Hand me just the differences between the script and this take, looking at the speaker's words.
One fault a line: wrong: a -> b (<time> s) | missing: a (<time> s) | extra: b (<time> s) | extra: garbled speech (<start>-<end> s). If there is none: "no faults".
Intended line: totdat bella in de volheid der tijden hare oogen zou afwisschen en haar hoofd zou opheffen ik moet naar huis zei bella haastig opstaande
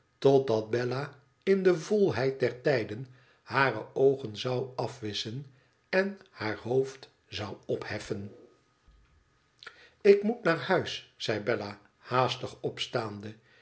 no faults